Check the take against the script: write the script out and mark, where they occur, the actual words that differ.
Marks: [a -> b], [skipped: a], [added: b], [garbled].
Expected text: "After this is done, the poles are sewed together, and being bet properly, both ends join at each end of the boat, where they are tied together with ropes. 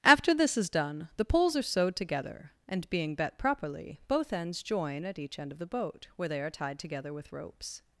"After this is done, the poles are sewed together, and being bet properly, both ends join at each end of the boat, where they are tied together with ropes.